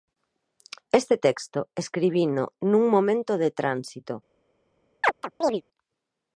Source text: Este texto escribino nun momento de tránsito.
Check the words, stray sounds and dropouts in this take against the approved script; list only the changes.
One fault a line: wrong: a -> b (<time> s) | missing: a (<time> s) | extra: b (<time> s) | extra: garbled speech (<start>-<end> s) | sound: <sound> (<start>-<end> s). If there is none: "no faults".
sound: chirp (5.0-5.6 s)